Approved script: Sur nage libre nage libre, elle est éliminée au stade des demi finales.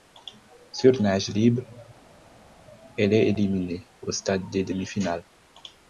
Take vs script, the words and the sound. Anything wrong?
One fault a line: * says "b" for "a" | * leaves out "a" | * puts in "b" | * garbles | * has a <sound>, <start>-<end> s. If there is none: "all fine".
* leaves out "nage libre"